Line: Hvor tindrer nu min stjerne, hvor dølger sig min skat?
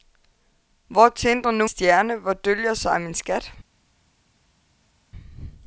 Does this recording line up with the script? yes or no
no